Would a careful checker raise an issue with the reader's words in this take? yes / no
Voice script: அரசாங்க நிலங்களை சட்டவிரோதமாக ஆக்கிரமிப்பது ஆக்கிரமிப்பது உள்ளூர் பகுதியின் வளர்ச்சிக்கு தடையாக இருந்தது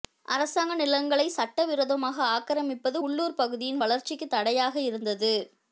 yes